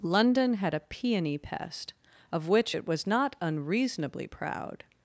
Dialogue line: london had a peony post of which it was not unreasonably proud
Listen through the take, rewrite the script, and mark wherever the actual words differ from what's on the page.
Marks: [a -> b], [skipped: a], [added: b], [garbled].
london had a peony [post -> pest] of which it was not unreasonably proud